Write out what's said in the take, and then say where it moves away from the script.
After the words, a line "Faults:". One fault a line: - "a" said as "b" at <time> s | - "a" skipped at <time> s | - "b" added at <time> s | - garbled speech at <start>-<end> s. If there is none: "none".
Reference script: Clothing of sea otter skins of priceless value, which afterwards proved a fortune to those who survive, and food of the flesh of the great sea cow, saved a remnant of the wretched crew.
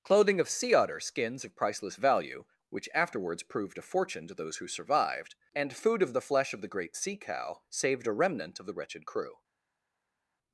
Clothing of sea otter skins of priceless value, which afterwards proved a fortune to those who survived, and food of the flesh of the great sea cow, saved a remnant of the wretched crew.
Faults:
- "survive" said as "survived" at 4.7 s